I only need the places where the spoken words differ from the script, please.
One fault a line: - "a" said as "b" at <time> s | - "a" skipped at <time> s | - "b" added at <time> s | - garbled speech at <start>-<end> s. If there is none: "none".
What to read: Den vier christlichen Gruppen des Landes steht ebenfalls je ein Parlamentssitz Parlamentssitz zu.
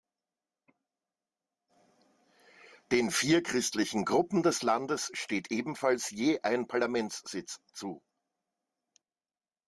- "Parlamentssitz" skipped at 7.6 s